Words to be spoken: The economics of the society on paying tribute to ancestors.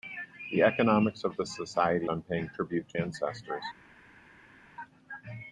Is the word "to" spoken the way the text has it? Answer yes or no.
yes